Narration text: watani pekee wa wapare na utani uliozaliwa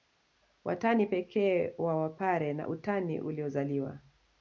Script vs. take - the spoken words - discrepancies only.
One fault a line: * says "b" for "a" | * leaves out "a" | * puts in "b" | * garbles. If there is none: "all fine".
all fine